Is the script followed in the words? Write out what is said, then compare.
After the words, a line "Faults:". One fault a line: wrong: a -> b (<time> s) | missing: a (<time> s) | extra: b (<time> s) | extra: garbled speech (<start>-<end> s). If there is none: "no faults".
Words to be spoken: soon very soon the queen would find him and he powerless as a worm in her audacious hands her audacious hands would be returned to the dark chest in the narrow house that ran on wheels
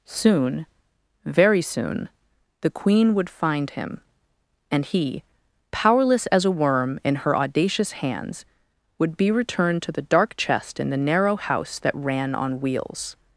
soon very soon the queen would find him and he powerless as a worm in her audacious hands would be returned to the dark chest in the narrow house that ran on wheels
Faults:
missing: her audacious hands (8.4 s)